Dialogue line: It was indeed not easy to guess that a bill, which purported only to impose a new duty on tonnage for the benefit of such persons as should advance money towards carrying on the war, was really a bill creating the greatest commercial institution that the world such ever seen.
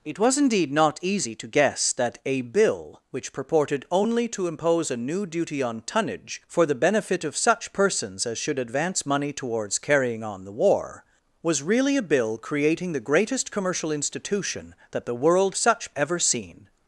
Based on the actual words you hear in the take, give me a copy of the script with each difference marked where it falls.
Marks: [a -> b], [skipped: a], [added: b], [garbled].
It was indeed not easy to guess that a bill, which purported only to impose a new duty on tonnage for the benefit of such persons as should advance money towards carrying on the war, was really a bill creating the greatest commercial institution that the world such ever seen.